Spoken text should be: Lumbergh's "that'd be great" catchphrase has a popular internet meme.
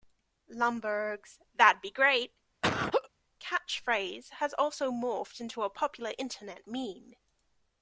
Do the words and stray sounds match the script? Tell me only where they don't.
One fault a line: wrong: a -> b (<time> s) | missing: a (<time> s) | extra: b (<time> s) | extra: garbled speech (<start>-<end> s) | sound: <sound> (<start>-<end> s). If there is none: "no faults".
sound: laugh (2.6-3.1 s)
extra: also morphed into (4.6 s)